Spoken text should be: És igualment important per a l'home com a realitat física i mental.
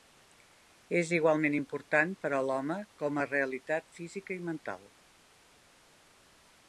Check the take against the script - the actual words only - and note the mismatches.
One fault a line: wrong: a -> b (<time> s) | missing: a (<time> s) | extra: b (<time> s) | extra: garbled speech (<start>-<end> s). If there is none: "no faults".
no faults